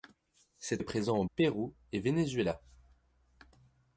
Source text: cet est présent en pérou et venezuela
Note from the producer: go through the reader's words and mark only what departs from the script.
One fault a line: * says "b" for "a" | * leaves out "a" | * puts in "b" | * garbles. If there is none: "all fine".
all fine